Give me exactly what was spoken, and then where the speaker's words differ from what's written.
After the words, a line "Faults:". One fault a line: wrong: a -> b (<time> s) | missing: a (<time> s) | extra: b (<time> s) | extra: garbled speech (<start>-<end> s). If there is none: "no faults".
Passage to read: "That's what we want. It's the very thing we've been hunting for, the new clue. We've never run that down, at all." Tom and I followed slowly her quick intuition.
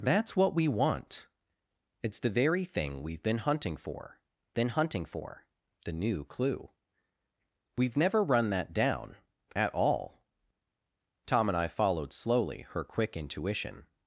"That's what we want. It's the very thing we've been hunting for been hunting for, the new clue. We've never run that down, at all." Tom and I followed slowly her quick intuition.
Faults:
extra: been hunting for (4.5 s)